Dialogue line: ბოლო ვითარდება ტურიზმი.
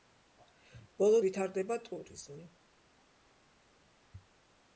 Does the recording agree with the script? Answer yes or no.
yes